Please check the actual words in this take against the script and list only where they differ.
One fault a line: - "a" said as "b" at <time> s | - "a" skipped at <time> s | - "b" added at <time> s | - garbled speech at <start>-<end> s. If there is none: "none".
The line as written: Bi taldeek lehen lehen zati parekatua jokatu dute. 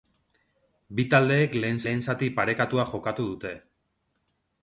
none